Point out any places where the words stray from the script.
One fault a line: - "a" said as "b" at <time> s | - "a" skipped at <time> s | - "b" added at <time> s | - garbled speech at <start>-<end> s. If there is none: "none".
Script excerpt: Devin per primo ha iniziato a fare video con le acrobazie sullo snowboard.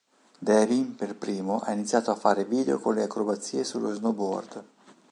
none